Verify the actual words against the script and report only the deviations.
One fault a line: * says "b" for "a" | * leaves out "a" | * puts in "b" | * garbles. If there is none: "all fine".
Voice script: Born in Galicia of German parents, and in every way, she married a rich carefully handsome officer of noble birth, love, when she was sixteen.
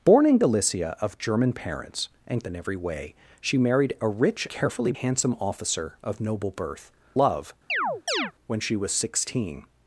all fine